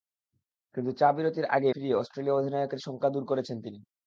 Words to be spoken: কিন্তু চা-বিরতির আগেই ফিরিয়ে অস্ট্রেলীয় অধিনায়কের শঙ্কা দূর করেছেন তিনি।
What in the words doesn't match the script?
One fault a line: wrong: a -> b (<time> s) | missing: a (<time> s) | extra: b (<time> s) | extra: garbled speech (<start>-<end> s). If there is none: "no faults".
no faults